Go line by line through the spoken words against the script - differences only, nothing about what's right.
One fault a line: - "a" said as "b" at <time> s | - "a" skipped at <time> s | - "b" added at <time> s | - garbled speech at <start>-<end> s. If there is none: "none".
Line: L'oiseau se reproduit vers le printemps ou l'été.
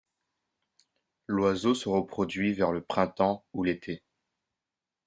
none